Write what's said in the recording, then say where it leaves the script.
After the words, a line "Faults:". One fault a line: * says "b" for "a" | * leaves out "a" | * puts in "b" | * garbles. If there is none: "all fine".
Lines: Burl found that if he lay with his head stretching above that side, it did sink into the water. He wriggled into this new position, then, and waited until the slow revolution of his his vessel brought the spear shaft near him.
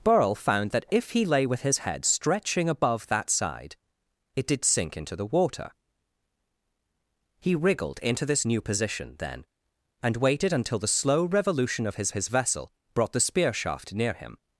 Burl found that if he lay with his head stretching above that side, it did sink into the water. He wriggled into this new position, then, and waited until the slow revolution of his his vessel brought the spear shaft near him.
Faults:
all fine